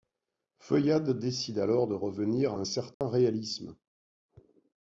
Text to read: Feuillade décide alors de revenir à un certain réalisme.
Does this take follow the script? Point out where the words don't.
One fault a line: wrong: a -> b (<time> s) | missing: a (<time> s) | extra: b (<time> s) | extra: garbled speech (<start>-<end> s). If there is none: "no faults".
no faults